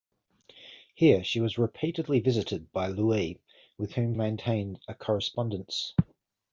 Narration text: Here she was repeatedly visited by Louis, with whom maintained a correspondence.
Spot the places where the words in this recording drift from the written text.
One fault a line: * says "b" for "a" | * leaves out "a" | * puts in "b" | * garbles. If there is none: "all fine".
all fine